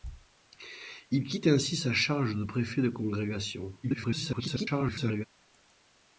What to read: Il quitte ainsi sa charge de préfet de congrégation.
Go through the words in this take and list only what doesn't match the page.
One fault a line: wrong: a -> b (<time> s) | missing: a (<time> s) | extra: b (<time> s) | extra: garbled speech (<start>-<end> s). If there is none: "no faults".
extra: garbled speech (3.8-5.3 s)